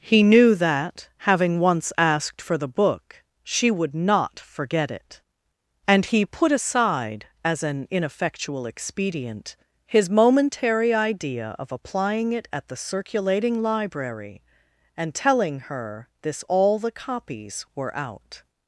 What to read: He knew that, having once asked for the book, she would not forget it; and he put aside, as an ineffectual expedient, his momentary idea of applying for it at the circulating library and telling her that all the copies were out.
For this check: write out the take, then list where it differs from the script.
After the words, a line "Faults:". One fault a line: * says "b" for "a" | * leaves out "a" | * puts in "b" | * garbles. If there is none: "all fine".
He knew that, having once asked for the book, she would not forget it; and he put aside, as an ineffectual expedient, his momentary idea of applying it at the circulating library and telling her this all the copies were out.
Faults:
* leaves out "for"
* says "this" for "that"